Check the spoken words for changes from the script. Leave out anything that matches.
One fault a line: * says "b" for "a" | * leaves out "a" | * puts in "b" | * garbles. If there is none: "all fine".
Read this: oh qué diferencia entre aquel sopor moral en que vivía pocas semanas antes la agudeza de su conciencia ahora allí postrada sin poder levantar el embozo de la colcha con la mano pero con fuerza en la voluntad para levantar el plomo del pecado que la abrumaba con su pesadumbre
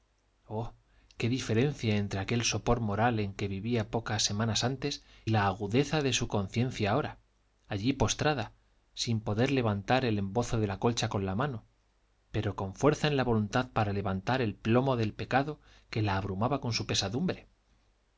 all fine